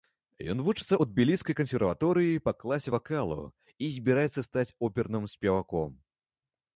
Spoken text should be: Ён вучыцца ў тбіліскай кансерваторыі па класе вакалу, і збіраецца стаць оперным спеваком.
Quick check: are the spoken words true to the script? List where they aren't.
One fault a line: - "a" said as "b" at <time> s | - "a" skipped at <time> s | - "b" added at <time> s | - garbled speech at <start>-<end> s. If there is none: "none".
none